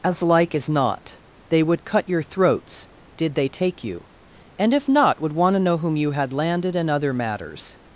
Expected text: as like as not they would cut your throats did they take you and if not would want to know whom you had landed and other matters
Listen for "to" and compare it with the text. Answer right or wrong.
right